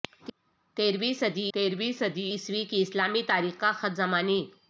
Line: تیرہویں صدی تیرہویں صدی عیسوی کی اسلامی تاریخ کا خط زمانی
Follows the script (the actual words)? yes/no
yes